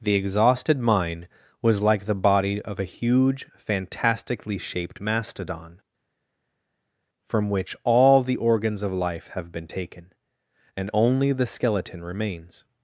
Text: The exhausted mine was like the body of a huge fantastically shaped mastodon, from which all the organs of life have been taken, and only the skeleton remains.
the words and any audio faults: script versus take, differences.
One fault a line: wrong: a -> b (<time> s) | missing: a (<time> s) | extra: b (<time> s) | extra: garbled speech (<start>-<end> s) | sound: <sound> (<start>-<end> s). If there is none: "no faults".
no faults